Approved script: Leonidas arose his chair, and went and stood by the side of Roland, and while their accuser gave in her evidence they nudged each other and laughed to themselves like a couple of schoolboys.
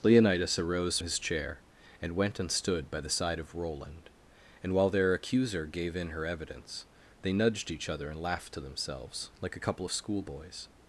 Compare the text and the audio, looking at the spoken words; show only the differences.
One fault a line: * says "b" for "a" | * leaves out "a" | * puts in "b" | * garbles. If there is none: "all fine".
all fine